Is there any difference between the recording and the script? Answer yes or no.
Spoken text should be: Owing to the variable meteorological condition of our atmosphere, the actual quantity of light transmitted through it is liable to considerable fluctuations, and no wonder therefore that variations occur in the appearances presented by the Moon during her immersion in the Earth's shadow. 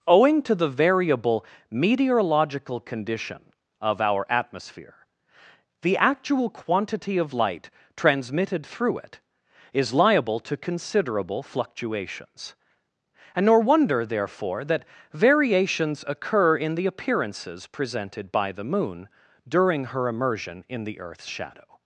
yes